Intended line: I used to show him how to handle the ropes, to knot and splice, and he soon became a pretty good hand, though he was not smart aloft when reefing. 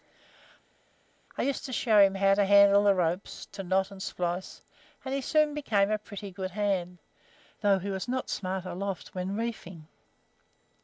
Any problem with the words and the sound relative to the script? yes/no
no